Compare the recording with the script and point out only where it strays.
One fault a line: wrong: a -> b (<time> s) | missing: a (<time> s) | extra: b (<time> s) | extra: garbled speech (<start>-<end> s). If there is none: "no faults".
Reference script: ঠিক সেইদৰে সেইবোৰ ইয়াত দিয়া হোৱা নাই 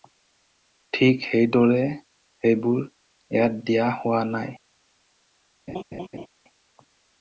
no faults